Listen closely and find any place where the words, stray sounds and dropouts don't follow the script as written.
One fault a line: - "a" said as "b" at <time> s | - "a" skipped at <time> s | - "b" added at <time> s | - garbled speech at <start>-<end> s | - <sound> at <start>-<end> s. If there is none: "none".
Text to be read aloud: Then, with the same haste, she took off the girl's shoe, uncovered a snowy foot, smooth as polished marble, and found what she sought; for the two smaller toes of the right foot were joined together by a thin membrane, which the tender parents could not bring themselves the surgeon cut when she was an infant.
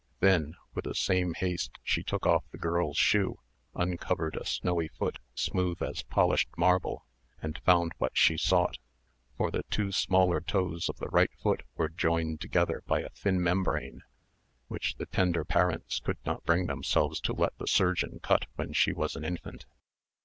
- "to let" added at 17.2 s